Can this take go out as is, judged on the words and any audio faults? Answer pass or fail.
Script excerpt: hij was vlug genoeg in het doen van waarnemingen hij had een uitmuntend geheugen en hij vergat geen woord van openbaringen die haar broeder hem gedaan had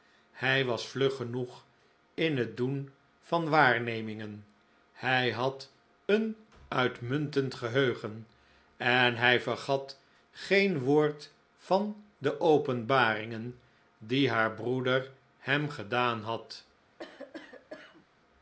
fail